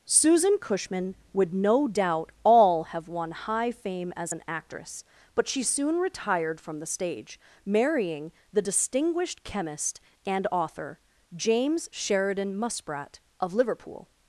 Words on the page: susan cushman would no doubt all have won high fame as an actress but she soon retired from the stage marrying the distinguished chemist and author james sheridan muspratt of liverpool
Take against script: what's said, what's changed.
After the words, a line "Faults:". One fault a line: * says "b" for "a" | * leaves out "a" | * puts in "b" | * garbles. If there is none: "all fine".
susan cushman would no doubt all have won high fame as an actress but she soon retired from the stage marrying the distinguished chemist and author james sheridan muspratt of liverpool
Faults:
all fine